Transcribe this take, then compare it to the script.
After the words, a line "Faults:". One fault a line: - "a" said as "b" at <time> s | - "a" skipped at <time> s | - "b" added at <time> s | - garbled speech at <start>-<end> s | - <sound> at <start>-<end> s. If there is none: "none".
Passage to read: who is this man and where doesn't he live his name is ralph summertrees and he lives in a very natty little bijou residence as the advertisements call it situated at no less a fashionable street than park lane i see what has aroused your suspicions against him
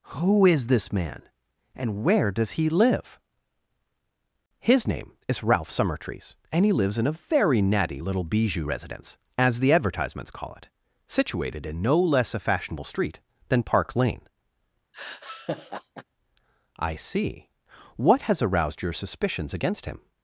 who is this man and where does he live his name is ralph summertrees and he lives in a very natty little bijou residence as the advertisements call it situated in no less a fashionable street than park lane i see what has aroused your suspicions against him
Faults:
- "doesn't" said as "does" at 2.3 s
- "at" said as "in" at 11.7 s
- laugh at 14.9-16.0 s